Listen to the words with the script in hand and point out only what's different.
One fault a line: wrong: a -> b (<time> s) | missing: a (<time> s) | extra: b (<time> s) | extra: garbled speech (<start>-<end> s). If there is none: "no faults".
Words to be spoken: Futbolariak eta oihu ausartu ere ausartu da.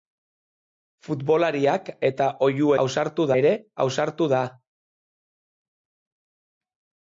no faults